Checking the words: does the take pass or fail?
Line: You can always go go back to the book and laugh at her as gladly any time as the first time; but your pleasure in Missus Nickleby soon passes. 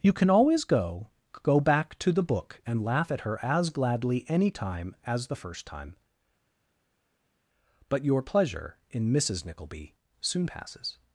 pass